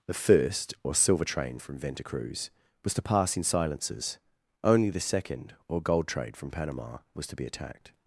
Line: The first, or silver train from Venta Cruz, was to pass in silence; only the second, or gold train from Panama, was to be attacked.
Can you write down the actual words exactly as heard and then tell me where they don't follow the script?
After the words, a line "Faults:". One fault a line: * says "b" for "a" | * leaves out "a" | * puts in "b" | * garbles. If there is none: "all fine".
The first, or silver train from Venta Cruz, was to pass in silences; only the second, or gold trade from Panama, was to be attacked.
Faults:
* says "silences" for "silence"
* says "trade" for "train"